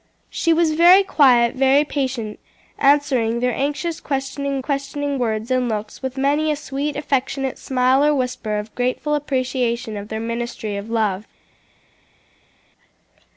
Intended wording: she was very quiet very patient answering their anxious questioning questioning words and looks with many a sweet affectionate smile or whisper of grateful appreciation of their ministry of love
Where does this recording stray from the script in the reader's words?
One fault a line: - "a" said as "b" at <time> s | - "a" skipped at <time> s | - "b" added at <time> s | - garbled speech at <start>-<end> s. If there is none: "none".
none